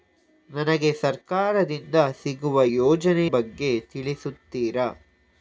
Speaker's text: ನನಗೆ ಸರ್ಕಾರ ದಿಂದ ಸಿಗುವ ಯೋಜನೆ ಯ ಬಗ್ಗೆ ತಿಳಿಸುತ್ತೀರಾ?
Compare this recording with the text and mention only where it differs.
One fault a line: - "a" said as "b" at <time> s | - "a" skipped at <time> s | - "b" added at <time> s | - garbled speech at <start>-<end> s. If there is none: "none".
- "ಯ" skipped at 3.3 s